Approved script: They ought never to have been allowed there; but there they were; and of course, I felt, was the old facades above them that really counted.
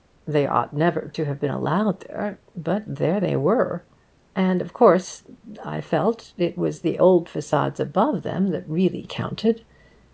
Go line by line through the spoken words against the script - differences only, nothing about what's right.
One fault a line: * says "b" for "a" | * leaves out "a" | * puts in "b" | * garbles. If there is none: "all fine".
* puts in "it"